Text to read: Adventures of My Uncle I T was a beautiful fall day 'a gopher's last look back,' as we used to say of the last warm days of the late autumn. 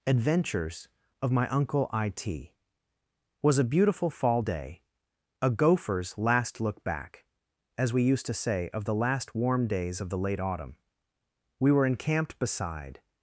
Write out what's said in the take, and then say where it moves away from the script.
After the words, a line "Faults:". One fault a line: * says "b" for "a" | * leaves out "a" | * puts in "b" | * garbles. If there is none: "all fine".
Adventures of My Uncle I T was a beautiful fall day 'a gopher's last look back,' as we used to say of the last warm days of the late autumn. We were encamped beside
Faults:
* puts in "We were encamped beside"